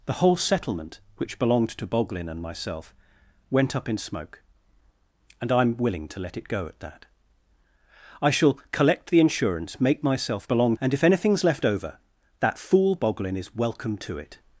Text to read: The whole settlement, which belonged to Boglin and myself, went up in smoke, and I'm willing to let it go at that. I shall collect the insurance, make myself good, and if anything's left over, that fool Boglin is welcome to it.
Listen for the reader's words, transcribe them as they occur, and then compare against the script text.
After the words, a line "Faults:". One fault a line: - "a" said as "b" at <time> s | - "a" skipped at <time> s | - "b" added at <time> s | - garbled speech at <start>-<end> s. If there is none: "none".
The whole settlement, which belonged to Boglin and myself, went up in smoke, and I'm willing to let it go at that. I shall collect the insurance, make myself belonged, and if anything's left over, that fool Boglin is welcome to it.
Faults:
- "good" said as "belonged" at 10.5 s